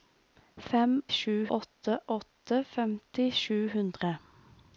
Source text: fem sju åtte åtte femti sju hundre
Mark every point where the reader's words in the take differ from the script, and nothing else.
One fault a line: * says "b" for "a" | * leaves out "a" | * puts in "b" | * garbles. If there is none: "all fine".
all fine